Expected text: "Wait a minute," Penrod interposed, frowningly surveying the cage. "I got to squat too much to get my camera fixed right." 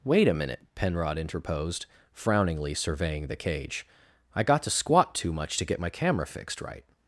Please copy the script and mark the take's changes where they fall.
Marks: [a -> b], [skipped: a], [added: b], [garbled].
"Wait a minute," Penrod interposed, frowningly surveying the cage. "I got to squat too much to get my camera fixed right."